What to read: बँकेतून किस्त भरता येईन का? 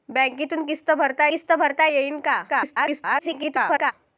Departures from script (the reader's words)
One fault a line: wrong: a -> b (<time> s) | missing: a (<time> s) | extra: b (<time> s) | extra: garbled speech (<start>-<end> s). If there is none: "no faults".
extra: किस्त भरता (1.3 s)
extra: garbled speech (2.5-3.9 s)